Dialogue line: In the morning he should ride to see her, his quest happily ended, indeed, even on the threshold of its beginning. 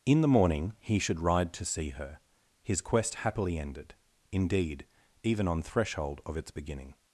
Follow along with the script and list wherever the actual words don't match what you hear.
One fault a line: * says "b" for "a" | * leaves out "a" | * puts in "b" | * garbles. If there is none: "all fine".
* leaves out "the"